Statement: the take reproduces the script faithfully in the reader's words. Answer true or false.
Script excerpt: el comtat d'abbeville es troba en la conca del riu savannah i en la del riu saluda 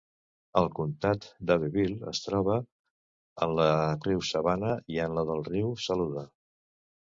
false